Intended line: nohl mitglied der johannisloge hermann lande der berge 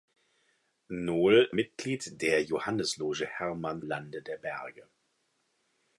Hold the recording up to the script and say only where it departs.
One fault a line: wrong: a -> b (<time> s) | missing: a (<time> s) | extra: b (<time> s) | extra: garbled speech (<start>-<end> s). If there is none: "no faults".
no faults